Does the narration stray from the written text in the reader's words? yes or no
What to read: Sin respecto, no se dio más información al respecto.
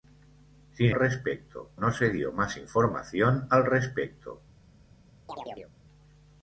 no